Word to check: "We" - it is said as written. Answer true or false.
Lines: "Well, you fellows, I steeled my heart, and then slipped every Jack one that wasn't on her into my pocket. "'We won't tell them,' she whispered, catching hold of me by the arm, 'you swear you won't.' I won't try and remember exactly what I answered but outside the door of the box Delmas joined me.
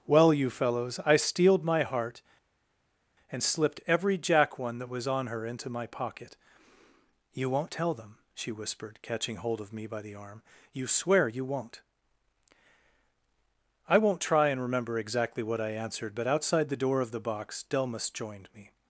false